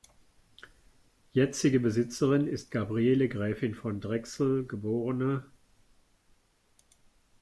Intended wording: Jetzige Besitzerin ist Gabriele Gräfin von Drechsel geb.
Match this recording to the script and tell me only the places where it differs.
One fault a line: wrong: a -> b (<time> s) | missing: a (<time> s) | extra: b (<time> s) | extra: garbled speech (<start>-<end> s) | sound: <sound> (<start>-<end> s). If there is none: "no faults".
no faults